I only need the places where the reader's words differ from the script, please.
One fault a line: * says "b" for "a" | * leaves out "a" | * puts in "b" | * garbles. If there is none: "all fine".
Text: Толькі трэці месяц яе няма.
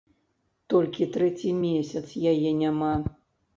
all fine